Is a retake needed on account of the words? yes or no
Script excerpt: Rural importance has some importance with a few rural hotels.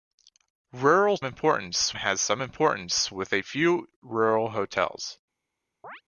no